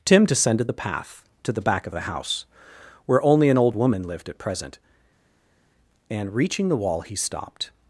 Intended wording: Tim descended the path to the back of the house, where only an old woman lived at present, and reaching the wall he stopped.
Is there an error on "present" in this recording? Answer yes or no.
no